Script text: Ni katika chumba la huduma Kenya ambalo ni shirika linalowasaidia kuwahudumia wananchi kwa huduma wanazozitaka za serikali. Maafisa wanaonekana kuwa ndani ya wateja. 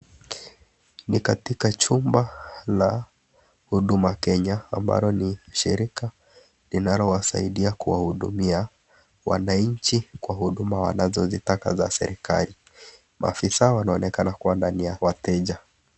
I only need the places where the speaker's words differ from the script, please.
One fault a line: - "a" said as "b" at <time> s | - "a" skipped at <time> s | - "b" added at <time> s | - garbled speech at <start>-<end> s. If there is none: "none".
none